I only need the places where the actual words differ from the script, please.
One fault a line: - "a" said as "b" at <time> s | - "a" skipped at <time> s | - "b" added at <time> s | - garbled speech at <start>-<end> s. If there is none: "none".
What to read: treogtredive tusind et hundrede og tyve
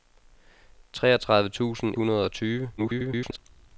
- "et" skipped at 1.9 s
- garbled speech at 2.8-3.4 s